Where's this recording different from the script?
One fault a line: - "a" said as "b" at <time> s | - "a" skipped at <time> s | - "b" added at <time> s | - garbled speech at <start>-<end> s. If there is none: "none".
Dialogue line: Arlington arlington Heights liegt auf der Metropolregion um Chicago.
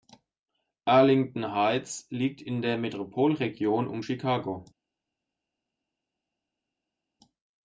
- "arlington" skipped at 1.5 s
- "auf" said as "in" at 2.4 s